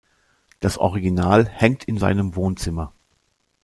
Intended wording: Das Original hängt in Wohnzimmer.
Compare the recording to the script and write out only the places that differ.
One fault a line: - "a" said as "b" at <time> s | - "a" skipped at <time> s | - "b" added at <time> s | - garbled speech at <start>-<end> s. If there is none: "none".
- "seinem" added at 2.0 s